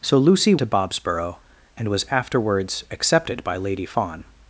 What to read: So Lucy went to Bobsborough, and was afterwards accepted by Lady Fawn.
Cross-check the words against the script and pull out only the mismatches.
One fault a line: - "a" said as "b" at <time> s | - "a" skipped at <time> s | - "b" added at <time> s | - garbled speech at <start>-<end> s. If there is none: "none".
- "went" skipped at 0.6 s